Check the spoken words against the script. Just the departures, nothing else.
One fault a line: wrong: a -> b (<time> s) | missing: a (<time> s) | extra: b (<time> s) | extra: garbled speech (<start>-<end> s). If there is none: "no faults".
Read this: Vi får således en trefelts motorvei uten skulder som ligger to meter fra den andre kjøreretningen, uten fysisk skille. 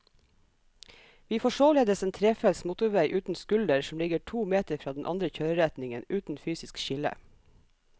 no faults